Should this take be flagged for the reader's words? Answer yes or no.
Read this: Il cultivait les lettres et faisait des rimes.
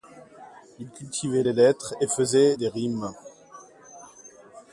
no